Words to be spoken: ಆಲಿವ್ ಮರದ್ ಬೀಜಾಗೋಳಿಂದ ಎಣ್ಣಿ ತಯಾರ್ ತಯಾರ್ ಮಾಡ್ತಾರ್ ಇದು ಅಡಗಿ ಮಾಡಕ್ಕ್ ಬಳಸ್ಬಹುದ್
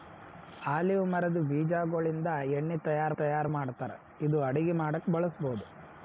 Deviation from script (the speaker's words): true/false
false